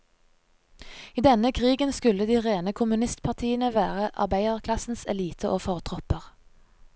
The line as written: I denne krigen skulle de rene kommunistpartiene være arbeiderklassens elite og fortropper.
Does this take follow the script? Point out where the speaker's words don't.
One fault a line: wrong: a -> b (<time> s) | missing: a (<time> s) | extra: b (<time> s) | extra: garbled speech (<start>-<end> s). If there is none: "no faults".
no faults